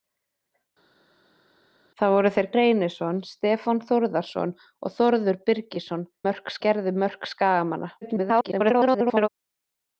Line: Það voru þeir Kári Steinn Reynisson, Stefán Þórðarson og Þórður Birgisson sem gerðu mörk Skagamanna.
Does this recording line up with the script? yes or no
no